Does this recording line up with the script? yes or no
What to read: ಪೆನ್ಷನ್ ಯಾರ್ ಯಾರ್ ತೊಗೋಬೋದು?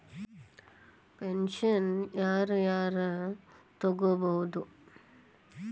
yes